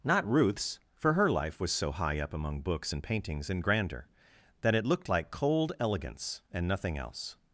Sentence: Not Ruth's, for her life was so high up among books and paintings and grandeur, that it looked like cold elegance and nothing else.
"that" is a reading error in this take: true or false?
false